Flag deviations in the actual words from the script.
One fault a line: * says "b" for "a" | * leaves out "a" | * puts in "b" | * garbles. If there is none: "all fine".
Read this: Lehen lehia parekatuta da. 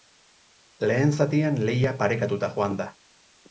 * puts in "zatian"
* puts in "joan"